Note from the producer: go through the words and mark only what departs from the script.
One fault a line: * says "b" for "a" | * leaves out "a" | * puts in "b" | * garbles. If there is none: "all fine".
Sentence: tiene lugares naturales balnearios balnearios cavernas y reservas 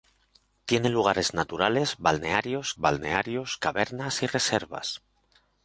all fine